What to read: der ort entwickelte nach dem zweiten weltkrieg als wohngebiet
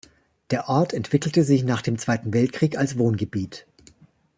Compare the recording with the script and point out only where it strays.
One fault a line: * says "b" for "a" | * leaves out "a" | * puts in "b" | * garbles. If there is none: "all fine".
* puts in "sich"